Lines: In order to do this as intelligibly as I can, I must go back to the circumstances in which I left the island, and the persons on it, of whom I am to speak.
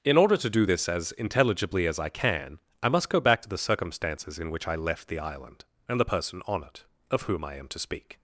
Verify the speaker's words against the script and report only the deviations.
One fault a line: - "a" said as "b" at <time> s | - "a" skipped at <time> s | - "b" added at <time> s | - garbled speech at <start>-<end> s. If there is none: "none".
- "persons" said as "person" at 6.0 s